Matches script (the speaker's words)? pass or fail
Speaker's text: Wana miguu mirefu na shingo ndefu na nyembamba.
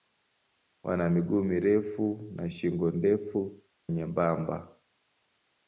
fail